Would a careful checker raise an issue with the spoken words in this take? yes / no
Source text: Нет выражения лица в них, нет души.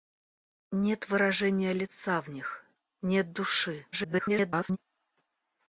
yes